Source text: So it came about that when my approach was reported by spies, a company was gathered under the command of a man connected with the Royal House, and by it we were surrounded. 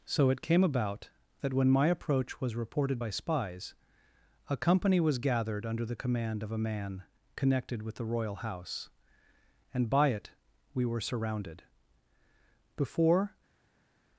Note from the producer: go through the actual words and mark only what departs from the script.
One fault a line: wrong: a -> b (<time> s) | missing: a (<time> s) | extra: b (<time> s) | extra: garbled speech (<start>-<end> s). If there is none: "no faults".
extra: Before (12.8 s)